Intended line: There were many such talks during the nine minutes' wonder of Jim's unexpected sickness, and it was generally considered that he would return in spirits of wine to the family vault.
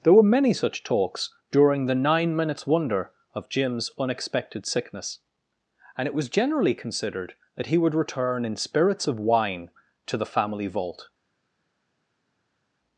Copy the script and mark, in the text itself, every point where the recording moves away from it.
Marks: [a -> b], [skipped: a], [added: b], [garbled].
There were many such talks during the nine minutes' wonder of Jim's unexpected sickness, and it was generally considered that he would return in spirits of wine to the family vault.